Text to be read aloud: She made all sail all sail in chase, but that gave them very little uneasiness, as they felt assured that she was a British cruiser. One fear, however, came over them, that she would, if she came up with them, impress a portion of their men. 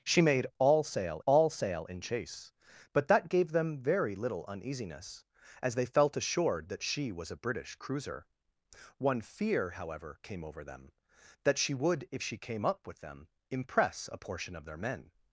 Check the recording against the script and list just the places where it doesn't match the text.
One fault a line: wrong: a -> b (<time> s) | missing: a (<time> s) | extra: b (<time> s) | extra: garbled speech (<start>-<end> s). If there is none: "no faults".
no faults